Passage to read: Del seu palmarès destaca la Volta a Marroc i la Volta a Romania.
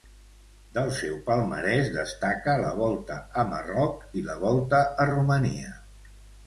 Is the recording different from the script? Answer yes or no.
no